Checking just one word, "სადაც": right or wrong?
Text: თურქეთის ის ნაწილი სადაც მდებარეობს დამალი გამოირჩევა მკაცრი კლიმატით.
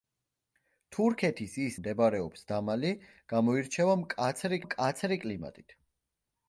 wrong